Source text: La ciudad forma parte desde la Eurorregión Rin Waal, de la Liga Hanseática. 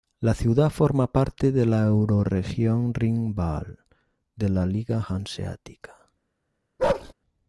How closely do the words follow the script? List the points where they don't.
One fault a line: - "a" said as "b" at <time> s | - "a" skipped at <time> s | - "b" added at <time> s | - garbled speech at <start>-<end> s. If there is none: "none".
- "desde" said as "de" at 1.5 s